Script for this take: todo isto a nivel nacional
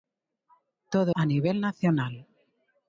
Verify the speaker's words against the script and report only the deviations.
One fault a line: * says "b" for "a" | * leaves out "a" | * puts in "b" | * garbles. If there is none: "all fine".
* leaves out "isto"